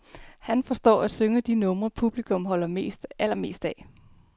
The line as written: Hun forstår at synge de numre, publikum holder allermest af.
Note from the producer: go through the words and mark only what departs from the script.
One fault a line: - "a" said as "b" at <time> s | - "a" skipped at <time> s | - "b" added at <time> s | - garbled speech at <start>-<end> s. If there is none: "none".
- "Hun" said as "Han" at 0.4 s